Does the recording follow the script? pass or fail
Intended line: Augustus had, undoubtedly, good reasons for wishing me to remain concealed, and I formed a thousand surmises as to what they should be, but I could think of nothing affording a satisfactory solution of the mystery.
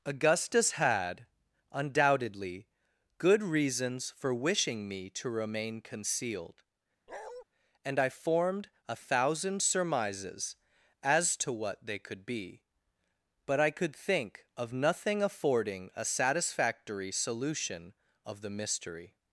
fail